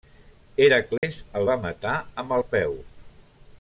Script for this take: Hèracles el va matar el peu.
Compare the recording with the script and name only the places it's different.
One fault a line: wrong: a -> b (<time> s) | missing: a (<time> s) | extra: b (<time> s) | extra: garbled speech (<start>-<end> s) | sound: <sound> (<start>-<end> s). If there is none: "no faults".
sound: dropout (1.0-1.0 s)
extra: amb (2.2 s)